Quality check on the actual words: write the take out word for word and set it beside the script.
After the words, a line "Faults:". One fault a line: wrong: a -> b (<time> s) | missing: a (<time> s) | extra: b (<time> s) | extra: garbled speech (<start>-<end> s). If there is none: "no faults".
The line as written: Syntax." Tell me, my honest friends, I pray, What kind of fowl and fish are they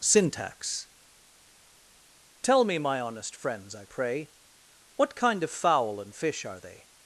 Syntax." Tell me, my honest friends, I pray, What kind of fowl and fish are they
Faults:
no faults